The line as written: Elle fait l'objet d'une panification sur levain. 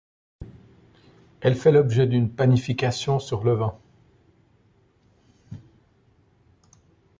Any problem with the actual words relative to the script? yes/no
no